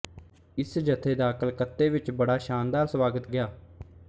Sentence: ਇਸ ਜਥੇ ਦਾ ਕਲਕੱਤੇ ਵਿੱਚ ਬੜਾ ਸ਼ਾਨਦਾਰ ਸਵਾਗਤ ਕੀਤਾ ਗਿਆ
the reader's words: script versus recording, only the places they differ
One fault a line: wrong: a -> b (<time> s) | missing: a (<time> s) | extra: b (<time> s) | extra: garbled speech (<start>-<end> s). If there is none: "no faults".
missing: ਕੀਤਾ (3.3 s)